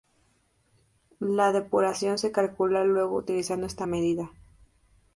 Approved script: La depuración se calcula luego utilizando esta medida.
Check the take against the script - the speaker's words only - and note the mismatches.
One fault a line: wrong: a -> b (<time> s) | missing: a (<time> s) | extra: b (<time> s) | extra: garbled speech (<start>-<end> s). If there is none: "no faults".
no faults